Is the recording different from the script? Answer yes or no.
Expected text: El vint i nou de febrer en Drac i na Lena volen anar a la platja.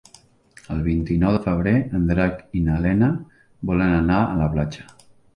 no